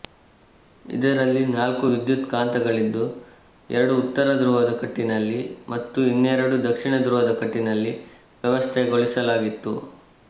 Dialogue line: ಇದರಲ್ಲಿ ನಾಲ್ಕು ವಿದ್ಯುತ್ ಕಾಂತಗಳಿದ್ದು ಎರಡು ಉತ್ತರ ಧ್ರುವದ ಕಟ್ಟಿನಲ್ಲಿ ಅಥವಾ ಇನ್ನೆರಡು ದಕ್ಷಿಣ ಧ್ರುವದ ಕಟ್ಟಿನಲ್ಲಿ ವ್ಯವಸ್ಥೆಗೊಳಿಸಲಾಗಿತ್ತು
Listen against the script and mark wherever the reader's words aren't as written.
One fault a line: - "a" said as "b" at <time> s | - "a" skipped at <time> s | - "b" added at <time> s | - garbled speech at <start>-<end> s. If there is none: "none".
- "ಅಥವಾ" said as "ಮತ್ತು" at 5.7 s